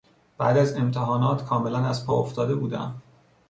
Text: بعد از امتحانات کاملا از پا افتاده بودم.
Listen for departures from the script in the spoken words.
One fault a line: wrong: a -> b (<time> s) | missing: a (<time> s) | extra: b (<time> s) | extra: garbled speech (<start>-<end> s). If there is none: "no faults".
no faults